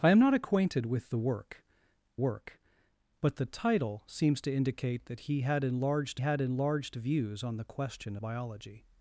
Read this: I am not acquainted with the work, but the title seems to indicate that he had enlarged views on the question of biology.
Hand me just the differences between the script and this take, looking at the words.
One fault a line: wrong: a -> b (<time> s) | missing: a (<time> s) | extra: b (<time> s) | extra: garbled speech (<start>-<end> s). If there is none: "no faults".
extra: work (2.2 s)
extra: had enlarged (6.2 s)
missing: of (8.2 s)